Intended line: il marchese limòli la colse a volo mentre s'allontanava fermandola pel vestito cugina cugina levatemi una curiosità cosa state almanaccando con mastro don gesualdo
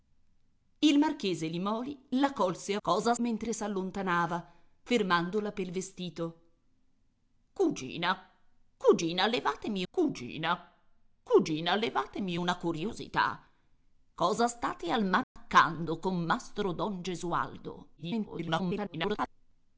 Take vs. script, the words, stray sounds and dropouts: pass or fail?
fail